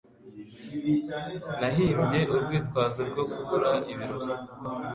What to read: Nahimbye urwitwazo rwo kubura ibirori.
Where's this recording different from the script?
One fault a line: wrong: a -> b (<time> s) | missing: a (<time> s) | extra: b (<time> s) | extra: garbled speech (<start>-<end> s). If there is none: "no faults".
no faults